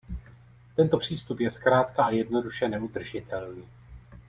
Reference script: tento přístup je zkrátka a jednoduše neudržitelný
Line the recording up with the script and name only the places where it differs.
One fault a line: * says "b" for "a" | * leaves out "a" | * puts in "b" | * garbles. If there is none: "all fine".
all fine